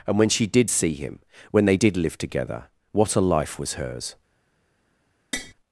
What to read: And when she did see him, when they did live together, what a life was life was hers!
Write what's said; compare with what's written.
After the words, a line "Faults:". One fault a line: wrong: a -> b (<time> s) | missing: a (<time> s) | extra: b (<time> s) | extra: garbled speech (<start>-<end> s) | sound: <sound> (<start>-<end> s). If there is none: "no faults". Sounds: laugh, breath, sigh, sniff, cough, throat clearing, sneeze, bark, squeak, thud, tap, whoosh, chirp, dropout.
And when she did see him, when they did live together, what a life was hers!
Faults:
missing: life was (3.7 s)
sound: tap (5.3-5.5 s)